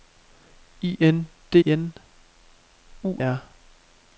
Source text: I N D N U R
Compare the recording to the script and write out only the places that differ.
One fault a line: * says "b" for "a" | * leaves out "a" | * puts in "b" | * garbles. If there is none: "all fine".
all fine